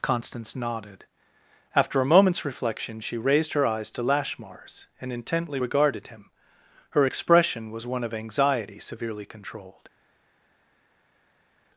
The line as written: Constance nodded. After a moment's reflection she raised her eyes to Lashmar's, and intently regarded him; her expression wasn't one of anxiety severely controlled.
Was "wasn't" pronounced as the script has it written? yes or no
no